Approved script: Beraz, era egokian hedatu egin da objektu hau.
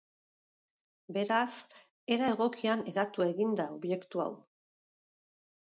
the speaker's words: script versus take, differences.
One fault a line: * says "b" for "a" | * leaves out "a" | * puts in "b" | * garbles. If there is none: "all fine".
all fine